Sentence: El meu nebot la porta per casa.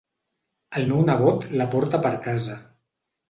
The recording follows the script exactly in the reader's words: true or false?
true